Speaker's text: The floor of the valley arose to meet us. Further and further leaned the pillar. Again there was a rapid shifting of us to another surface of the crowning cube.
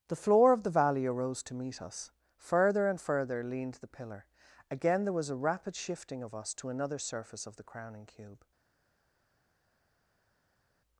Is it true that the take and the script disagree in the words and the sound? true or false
false